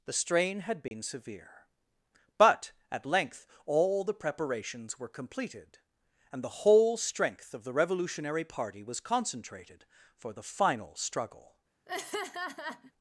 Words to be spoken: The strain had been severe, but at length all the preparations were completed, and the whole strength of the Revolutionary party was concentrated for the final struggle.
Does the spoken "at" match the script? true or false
true